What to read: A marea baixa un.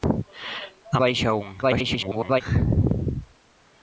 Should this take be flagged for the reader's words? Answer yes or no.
yes